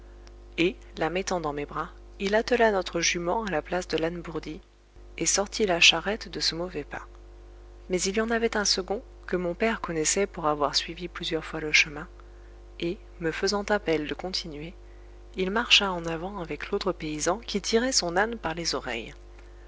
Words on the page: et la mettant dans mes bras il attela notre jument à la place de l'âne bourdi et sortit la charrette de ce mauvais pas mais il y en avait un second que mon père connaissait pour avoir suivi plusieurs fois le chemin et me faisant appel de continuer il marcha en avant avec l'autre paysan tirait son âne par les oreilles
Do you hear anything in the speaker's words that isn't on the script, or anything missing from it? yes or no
yes